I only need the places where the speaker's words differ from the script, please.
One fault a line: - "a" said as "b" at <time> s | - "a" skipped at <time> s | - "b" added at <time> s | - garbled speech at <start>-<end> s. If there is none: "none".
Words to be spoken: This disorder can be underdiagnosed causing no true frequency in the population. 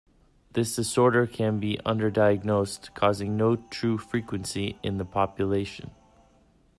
none